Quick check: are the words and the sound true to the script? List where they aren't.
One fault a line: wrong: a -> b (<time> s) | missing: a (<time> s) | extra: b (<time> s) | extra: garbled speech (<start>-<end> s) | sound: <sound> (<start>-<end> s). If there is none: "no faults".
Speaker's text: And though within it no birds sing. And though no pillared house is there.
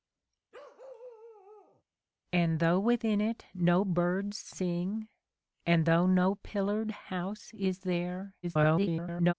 sound: bark (0.5-1.8 s)
extra: garbled speech (8.4-9.3 s)